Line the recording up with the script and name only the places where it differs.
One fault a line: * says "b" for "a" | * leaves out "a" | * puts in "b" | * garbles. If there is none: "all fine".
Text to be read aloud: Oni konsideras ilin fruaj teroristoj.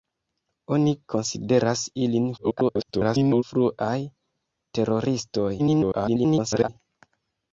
* garbles
* garbles